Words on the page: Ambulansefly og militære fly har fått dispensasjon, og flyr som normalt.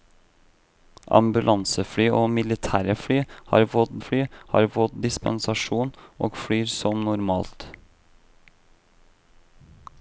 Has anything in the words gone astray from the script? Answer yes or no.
yes